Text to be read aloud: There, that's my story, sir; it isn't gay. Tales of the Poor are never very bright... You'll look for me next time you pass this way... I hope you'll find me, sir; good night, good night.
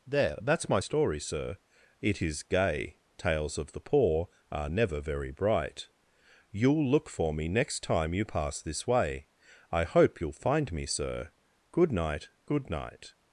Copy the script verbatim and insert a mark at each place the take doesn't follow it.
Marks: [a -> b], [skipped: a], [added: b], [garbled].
There, that's my story, sir; it [isn't -> is] gay. Tales of the Poor are never very bright... You'll look for me next time you pass this way... I hope you'll find me, sir; good night, good night.